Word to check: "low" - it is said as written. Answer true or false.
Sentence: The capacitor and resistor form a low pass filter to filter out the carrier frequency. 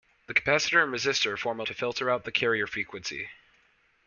false